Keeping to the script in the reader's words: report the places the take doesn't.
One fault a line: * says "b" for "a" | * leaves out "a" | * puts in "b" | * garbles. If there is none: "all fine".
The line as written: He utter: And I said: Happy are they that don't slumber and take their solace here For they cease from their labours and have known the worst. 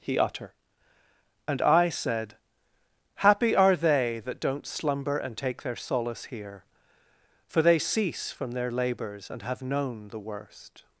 all fine